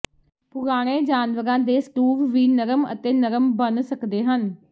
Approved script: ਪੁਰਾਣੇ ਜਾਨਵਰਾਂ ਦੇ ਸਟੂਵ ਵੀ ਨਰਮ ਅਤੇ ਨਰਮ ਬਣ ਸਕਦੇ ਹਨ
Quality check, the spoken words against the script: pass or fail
pass